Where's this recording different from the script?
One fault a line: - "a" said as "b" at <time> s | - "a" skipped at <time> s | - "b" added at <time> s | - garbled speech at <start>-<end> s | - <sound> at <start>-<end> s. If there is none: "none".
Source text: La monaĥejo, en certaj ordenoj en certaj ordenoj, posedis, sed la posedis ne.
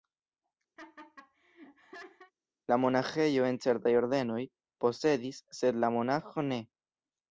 - laugh at 0.8-2.3 s
- "en certaj ordenoj" skipped at 4.4 s
- "posedis" said as "monaĥo" at 6.0 s